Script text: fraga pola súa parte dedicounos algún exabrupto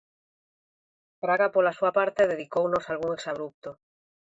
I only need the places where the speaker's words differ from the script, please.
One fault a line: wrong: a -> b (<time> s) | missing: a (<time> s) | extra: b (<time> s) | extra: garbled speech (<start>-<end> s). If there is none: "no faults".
no faults